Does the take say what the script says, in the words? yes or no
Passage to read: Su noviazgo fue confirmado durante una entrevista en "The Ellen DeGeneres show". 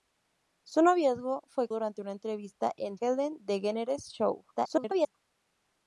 no